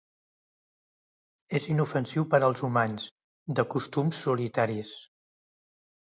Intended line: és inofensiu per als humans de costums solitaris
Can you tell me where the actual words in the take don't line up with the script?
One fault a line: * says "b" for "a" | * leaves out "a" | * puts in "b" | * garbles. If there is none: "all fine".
all fine